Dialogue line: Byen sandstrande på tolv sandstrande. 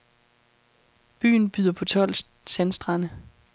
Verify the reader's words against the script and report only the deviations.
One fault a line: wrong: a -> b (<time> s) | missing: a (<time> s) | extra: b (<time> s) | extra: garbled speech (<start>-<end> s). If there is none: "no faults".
wrong: sandstrande -> byder (1.5 s)